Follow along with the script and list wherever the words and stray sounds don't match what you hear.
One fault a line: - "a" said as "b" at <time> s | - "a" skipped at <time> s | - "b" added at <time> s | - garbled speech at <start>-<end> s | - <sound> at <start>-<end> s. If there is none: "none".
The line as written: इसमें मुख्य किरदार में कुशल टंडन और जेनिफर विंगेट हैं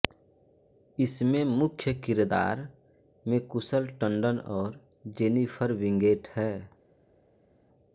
none